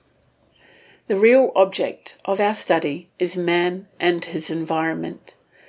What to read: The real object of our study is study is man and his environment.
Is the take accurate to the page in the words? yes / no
no